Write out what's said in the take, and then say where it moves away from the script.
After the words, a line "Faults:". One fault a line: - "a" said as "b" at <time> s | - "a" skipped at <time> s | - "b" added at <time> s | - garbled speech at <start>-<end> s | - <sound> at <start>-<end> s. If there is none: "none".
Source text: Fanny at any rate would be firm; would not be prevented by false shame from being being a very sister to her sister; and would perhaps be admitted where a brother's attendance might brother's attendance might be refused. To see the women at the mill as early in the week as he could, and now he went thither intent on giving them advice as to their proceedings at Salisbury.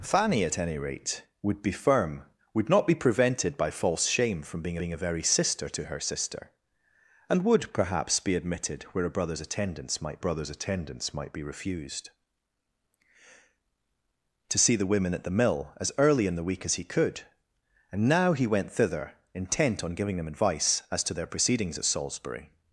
Fanny at any rate would be firm; would not be prevented by false shame from being being a very sister to her sister; and would perhaps be admitted where a brother's attendance might brother's attendance might be refused. To see the women at the mill as early in the week as he could, and now he went thither intent on giving them advice as to their proceedings at Salisbury.
Faults:
none